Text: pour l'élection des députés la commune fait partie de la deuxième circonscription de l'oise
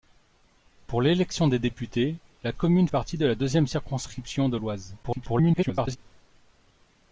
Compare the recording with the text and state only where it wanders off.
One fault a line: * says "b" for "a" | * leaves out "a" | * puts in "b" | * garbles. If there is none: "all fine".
* leaves out "fait"
* garbles